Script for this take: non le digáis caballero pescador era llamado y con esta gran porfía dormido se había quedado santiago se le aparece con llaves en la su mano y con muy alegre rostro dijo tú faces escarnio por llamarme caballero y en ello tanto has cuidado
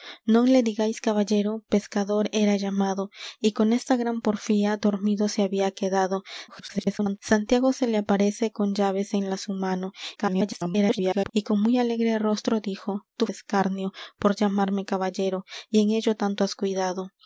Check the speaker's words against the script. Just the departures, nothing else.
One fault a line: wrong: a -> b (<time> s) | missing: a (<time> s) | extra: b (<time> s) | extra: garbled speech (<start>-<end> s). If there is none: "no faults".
extra: garbled speech (6.5-7.2 s)
extra: garbled speech (10.2-11.3 s)
missing: faces (13.3 s)